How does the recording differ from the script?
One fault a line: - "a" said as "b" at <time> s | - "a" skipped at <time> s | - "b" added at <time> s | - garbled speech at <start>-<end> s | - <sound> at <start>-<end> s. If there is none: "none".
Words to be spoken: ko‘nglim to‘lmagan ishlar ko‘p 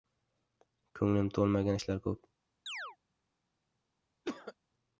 - chirp at 2.7-3.0 s
- cough at 4.2-4.5 s